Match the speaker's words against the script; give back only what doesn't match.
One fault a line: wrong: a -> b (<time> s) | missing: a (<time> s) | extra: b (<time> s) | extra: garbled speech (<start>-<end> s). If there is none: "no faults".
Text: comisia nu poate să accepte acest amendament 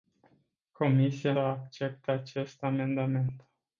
missing: nu poate să (1.3 s)